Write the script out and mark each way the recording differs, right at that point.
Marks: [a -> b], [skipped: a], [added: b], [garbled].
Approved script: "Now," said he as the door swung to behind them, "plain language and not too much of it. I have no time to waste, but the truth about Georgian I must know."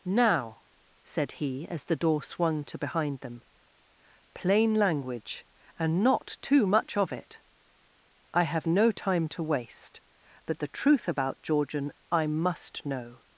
"Now," said he as the door swung to behind them, "plain language and not too much of it. I have no time to waste, but the truth about Georgian I must know."